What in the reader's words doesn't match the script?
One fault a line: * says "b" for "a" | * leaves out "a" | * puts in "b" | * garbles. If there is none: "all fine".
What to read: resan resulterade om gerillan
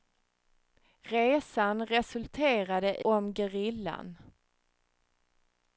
all fine